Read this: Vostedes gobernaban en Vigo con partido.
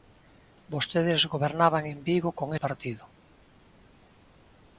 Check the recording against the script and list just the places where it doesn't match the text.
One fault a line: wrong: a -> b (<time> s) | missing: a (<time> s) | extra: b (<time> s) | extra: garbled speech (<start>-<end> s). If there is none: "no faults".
no faults